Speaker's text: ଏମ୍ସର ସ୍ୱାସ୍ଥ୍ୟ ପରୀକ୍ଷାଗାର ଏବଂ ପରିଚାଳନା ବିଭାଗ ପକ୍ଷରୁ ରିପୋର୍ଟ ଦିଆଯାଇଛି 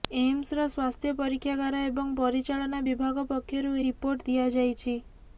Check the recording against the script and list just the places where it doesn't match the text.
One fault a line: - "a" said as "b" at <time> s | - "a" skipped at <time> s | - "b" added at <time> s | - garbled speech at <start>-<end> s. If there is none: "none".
none